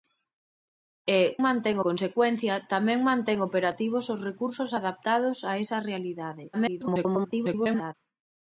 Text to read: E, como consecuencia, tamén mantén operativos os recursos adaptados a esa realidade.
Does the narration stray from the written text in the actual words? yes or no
yes